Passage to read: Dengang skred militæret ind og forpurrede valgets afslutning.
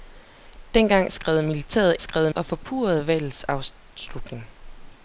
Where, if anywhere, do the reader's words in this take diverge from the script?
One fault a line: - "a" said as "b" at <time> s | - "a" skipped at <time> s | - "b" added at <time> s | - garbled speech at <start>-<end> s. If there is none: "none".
- "ind" said as "skred" at 2.0 s